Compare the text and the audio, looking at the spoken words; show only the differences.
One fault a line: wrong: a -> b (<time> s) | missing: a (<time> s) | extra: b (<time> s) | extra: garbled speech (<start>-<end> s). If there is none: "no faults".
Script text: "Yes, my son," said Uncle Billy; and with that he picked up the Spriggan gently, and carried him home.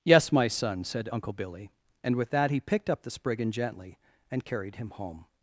no faults